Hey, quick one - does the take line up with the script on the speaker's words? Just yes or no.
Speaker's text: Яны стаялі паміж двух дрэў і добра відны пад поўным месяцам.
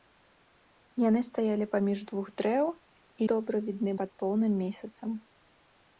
yes